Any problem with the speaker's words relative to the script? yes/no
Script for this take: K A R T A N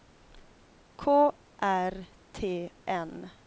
yes